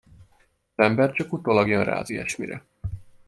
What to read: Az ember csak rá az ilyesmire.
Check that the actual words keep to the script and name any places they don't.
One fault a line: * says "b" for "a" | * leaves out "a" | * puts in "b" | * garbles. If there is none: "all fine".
* puts in "utólag jön"